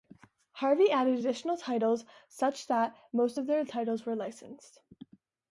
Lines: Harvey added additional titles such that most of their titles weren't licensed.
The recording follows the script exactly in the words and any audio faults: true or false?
false